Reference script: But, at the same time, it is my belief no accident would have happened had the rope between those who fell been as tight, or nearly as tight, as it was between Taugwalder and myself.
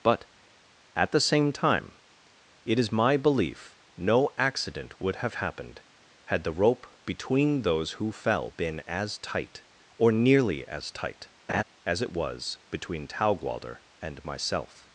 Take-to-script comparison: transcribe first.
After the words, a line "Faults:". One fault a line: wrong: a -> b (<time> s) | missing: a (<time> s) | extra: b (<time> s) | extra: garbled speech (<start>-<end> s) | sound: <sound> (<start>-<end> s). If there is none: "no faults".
But, at the same time, it is my belief no accident would have happened had the rope between those who fell been as tight, or nearly as tight, as it was between Taugwalder and myself.
Faults:
sound: laugh (11.5-11.6 s)